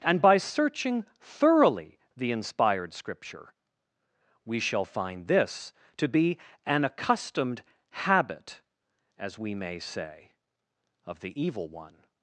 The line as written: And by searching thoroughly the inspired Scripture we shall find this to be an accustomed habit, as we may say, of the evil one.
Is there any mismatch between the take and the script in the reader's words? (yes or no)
no